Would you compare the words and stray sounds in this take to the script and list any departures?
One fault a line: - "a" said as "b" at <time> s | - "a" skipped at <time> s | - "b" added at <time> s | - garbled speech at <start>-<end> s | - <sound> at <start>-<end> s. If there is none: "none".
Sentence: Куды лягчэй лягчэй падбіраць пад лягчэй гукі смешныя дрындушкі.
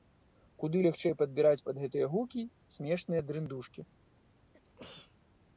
- "лягчэй" skipped at 1.2 s
- "лягчэй" said as "гэтыя" at 1.8 s
- sneeze at 4.5-5.2 s